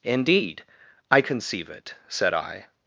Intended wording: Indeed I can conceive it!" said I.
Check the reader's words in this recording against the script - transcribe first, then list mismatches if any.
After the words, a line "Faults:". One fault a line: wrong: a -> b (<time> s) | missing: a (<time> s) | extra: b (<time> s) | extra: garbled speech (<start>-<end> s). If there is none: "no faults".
Indeed I conceive it!" said I.
Faults:
missing: can (1.2 s)